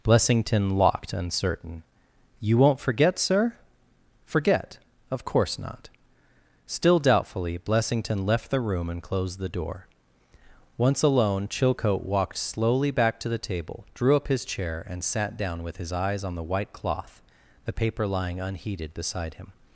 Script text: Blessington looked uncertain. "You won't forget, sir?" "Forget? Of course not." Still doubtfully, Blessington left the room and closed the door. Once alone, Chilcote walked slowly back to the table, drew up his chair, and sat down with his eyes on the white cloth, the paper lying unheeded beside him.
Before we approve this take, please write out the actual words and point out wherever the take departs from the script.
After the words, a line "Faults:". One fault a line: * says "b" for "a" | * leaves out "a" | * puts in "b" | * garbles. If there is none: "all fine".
Blessington locked uncertain. "You won't forget, sir?" "Forget? Of course not." Still doubtfully, Blessington left the room and closed the door. Once alone, Chilcote walked slowly back to the table, drew up his chair, and sat down with his eyes on the white cloth, the paper lying unheeded beside him.
Faults:
* says "locked" for "looked"